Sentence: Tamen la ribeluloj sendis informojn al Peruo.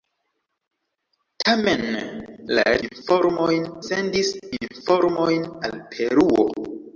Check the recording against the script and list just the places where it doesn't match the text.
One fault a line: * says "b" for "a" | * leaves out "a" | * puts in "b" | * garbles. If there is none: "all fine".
* says "informojn" for "ribeluloj"